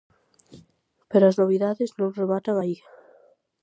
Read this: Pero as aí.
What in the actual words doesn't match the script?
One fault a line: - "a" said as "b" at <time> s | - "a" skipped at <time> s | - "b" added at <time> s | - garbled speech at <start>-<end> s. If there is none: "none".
- "novidades non rematan" added at 1.4 s